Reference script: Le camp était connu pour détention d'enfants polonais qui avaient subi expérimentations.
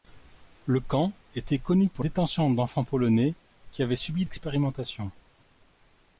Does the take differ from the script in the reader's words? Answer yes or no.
no